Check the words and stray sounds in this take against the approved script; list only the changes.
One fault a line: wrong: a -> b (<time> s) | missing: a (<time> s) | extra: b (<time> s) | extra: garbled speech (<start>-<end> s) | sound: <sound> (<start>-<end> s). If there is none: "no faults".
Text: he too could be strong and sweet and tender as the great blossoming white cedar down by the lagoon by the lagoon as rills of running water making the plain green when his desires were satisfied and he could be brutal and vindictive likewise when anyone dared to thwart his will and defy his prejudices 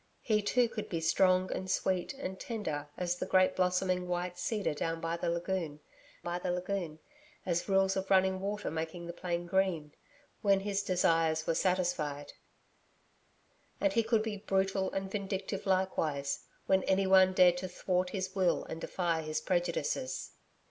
no faults